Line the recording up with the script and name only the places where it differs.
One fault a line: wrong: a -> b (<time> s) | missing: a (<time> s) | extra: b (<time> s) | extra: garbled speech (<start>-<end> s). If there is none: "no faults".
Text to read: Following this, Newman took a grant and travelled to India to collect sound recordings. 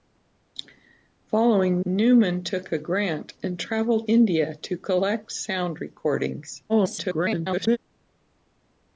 missing: this (1.8 s)
missing: to (4.1 s)
extra: garbled speech (6.7-7.8 s)